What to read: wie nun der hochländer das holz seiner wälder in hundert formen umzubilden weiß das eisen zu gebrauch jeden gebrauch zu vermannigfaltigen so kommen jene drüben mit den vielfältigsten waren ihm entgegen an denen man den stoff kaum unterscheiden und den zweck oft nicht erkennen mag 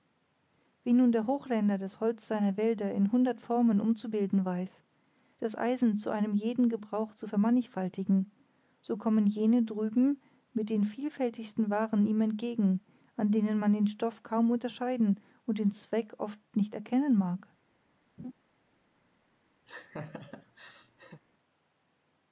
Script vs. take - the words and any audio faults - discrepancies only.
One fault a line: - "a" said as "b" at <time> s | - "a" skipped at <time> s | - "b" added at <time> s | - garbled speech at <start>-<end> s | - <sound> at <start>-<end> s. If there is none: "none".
- "gebrauch" said as "einem" at 6.1 s
- laugh at 18.2-18.3 s
- laugh at 19.7-21.2 s